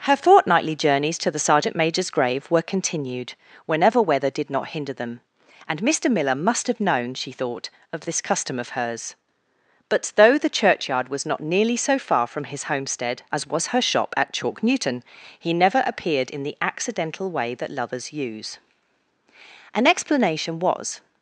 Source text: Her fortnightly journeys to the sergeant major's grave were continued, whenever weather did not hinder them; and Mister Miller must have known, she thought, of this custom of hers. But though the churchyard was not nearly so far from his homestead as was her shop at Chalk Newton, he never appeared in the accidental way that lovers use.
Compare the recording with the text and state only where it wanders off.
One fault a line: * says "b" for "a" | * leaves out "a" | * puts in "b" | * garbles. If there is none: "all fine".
* puts in "An explanation was"